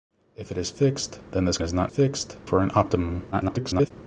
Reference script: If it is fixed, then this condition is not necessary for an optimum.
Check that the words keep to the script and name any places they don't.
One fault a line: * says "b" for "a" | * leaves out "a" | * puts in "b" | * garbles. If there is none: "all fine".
* leaves out "condition"
* says "fixed" for "necessary"
* garbles